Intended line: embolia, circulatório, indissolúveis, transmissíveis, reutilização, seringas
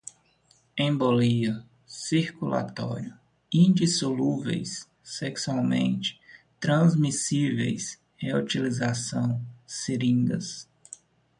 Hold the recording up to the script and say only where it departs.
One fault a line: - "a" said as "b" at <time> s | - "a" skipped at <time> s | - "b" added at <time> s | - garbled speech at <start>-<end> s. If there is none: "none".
- "sexualmente" added at 5.0 s